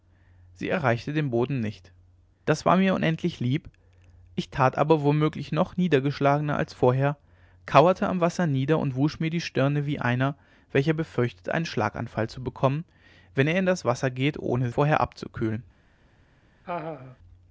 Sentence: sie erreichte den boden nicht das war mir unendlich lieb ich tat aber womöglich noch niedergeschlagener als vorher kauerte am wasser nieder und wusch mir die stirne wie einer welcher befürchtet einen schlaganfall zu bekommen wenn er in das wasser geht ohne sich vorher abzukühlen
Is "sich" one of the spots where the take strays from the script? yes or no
yes